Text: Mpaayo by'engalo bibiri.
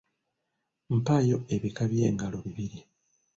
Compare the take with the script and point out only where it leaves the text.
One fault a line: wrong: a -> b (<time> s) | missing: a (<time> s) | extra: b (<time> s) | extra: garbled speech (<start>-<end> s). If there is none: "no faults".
extra: ebika (1.6 s)